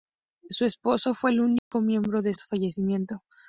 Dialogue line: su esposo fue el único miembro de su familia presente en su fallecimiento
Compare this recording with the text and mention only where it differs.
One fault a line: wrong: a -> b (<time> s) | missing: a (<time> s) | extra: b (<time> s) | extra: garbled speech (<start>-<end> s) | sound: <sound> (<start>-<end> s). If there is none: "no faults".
sound: dropout (1.6-1.7 s)
missing: su familia presente (2.3 s)